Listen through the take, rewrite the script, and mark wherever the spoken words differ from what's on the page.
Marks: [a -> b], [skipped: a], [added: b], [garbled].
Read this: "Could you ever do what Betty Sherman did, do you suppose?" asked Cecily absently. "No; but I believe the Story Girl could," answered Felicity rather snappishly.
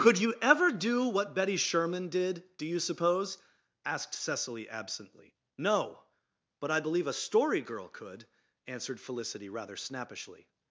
"Could you ever do what Betty Sherman did, do you suppose?" asked Cecily absently. "No; but I believe [the -> a] Story Girl could," answered Felicity rather snappishly.